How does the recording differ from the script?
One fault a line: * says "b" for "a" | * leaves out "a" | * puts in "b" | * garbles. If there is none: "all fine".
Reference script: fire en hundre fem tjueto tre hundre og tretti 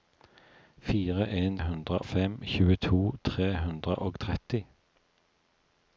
all fine